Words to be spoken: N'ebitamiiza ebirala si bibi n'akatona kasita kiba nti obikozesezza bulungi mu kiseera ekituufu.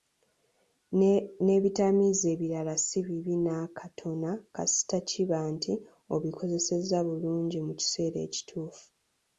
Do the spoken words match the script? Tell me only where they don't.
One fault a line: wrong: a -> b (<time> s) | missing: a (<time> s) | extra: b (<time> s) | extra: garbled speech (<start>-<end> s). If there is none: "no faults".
no faults